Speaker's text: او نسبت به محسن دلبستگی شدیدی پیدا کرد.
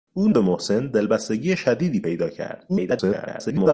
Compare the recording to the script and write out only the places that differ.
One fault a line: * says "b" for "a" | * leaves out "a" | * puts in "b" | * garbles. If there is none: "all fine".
* leaves out "نسبت"
* garbles